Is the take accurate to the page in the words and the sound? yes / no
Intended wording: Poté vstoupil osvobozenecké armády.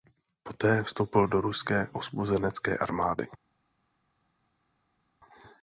no